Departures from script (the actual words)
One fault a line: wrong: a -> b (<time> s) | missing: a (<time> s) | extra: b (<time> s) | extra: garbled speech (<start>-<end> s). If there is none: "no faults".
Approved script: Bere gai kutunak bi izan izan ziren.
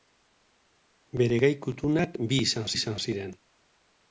no faults